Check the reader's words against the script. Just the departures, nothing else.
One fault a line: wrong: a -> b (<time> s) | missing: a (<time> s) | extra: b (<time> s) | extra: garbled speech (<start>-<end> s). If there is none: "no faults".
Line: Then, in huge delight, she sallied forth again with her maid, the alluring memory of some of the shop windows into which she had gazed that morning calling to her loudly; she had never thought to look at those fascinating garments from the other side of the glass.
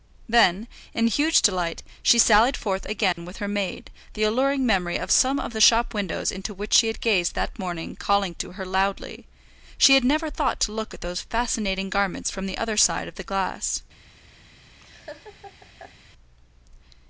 no faults